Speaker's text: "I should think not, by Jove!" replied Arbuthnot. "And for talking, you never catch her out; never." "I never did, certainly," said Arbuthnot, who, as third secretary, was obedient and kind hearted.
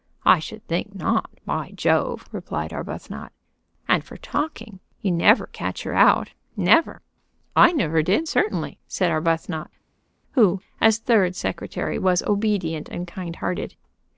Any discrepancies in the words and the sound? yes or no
no